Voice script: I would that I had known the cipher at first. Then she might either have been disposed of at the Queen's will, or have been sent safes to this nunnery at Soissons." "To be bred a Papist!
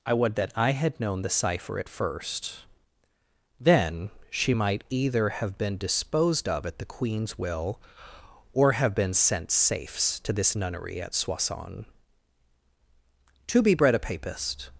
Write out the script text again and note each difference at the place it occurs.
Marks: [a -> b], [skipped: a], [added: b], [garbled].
I would that I had known the cipher at first. Then she might either have been disposed of at the Queen's will, or have been sent safes to this nunnery at Soissons." "To be bred a Papist!